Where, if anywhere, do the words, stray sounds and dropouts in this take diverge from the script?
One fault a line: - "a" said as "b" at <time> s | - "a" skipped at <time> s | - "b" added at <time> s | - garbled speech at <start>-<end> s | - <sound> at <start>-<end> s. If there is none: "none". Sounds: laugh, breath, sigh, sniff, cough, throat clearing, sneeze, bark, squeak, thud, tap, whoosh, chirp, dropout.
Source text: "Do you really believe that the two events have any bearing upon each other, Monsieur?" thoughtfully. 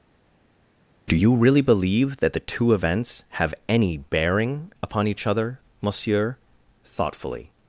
none